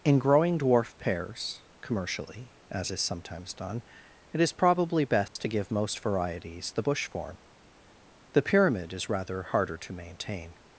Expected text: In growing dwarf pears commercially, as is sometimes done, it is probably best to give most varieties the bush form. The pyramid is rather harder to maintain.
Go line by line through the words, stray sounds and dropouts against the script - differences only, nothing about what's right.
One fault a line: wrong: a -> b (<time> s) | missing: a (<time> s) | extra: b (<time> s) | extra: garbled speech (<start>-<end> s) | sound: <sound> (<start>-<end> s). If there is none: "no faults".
sound: dropout (5.3-5.4 s)